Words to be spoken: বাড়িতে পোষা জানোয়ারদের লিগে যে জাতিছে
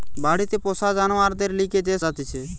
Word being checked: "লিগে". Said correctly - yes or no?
yes